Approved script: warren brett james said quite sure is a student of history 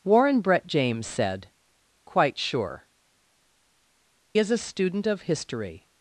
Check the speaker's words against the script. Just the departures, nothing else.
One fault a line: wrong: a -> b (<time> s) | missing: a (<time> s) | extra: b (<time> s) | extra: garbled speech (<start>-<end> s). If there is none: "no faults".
no faults